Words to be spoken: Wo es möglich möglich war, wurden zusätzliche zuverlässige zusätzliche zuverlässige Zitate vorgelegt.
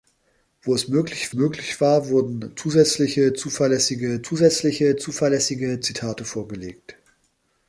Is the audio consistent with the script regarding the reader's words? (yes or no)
yes